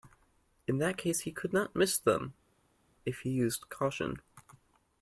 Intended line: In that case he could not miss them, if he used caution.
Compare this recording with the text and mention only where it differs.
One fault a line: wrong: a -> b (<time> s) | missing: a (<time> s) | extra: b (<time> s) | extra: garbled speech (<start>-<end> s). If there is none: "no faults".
no faults